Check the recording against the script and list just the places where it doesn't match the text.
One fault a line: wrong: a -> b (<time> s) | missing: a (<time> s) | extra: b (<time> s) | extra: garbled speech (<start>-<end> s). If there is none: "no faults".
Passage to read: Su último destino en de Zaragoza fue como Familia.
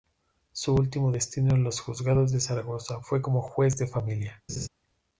extra: los juzgados (1.6 s)
extra: Juez de (3.4 s)